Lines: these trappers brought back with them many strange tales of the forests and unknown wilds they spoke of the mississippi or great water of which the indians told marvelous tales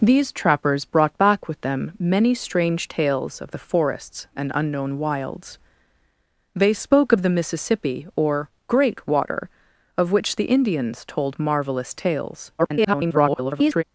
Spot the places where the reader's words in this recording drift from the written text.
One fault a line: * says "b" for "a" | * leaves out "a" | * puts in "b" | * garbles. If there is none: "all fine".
* garbles